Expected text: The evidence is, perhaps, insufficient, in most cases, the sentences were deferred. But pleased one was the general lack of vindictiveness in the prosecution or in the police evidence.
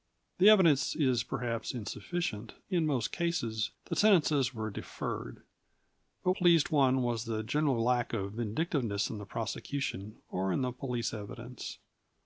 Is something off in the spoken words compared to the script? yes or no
no